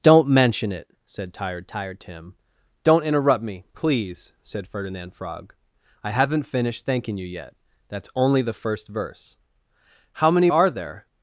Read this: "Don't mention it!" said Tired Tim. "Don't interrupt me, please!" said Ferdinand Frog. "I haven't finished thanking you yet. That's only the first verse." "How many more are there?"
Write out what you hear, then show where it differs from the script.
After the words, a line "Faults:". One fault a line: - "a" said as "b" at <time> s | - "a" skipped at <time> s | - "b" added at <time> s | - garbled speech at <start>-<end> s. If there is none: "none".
"Don't mention it!" said Tired Tired Tim. "Don't interrupt me, please!" said Ferdinand Frog. "I haven't finished thanking you yet. That's only the first verse." "How many are there?"
Faults:
- "Tired" added at 1.7 s
- "more" skipped at 10.5 s